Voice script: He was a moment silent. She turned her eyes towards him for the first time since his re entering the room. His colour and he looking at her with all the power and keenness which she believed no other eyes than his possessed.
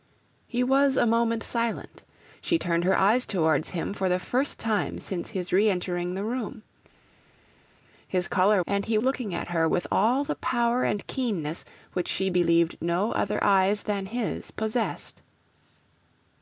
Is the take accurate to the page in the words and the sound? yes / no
yes